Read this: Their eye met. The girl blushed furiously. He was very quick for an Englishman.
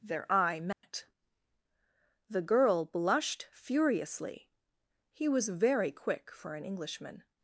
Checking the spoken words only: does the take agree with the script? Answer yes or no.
yes